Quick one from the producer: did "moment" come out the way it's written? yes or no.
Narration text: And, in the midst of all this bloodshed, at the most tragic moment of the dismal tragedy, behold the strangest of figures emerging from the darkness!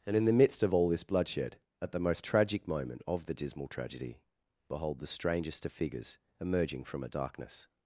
yes